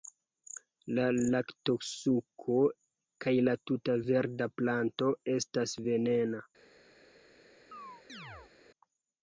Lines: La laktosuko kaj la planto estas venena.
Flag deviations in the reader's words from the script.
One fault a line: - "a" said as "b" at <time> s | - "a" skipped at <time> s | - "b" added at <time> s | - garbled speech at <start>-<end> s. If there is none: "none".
- "tuta verda" added at 3.7 s